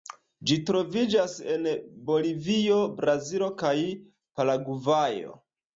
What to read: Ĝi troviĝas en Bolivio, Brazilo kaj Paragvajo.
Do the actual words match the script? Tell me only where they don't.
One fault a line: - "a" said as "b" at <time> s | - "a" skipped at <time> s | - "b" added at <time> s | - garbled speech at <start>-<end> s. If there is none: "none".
none